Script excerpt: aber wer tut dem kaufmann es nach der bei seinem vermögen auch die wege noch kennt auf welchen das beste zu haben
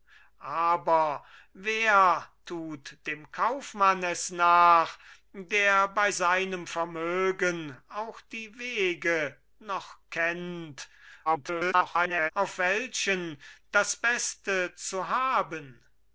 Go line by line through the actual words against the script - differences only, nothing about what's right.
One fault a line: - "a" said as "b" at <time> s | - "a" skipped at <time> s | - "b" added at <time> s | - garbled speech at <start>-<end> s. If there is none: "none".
- garbled speech at 11.3-12.3 s